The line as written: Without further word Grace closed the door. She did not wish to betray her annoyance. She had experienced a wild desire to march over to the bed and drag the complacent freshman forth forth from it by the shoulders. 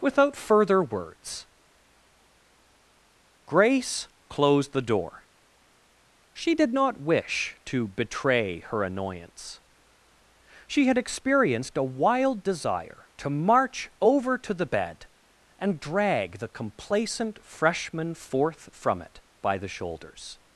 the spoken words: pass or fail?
fail